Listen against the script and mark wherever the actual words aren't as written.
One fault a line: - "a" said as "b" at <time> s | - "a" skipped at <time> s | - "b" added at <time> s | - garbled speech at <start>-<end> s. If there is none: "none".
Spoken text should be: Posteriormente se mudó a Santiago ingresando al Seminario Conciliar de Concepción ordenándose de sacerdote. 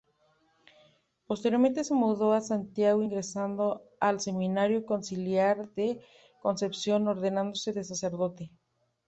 none